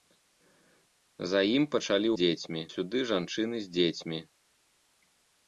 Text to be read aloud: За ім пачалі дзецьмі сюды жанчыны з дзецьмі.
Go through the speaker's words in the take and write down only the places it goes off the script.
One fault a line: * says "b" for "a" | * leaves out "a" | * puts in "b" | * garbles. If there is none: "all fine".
all fine